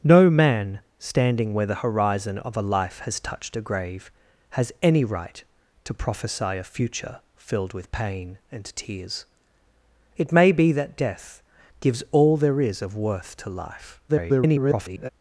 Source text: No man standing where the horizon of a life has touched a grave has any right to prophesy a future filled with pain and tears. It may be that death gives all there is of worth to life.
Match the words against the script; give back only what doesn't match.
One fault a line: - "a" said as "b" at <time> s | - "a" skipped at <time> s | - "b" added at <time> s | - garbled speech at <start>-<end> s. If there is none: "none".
- garbled speech at 14.1-15.1 s